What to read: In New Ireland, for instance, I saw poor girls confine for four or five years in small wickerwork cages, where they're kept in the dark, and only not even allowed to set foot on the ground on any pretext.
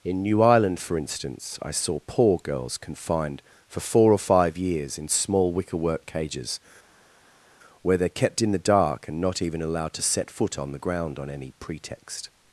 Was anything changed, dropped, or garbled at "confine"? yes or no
yes